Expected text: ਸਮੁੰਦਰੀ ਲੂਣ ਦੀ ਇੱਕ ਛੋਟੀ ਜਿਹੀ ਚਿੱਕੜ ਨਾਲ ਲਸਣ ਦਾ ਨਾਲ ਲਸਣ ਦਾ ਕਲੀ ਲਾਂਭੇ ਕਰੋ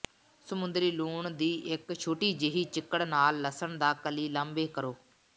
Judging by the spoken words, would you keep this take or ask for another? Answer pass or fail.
fail